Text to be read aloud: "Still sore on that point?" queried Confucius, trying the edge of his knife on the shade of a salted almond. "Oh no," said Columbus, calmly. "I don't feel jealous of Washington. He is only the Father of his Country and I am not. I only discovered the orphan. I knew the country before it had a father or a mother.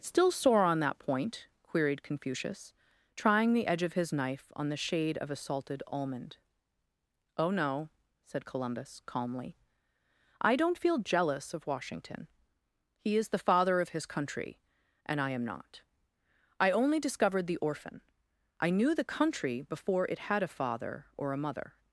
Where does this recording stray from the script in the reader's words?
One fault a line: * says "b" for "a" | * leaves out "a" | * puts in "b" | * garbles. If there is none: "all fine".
* leaves out "only"